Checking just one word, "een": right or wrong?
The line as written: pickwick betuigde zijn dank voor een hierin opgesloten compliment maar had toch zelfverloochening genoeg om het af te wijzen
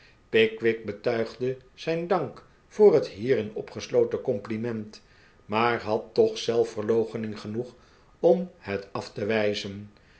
wrong